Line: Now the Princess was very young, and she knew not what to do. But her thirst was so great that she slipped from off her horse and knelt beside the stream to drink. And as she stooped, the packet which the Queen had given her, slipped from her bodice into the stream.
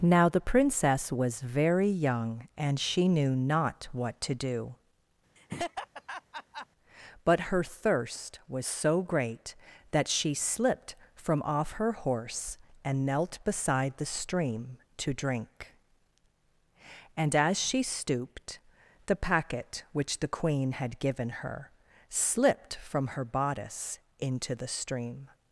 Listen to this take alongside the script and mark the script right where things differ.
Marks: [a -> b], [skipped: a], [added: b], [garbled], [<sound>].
Now the Princess was very young, and she knew not what to do. [laugh] But her thirst was so great that she slipped from off her horse and knelt beside the stream to drink. And as she stooped, the packet which the Queen had given her, slipped from her bodice into the stream.